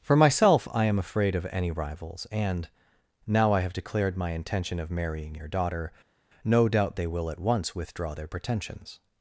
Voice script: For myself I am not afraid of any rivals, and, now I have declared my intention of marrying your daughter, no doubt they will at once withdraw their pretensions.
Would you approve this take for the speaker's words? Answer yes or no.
no